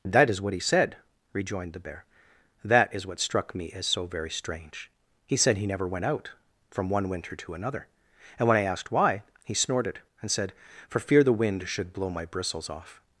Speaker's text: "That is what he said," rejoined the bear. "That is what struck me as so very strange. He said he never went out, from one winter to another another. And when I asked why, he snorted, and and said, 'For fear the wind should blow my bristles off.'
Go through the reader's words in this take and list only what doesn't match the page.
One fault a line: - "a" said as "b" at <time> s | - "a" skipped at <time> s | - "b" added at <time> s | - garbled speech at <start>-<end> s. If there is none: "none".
- "another" skipped at 7.8 s
- "and" skipped at 10.3 s